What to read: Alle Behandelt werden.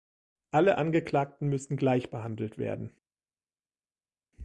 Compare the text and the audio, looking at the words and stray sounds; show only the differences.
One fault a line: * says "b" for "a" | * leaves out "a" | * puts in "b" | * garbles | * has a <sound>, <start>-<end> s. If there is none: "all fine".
* puts in "Angeklagten müssen gleich"